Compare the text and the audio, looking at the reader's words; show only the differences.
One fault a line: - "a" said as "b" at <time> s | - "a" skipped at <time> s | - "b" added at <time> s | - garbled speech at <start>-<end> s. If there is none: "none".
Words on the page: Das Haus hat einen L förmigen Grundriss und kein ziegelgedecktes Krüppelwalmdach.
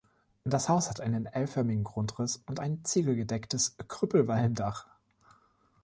- "kein" said as "ein" at 2.6 s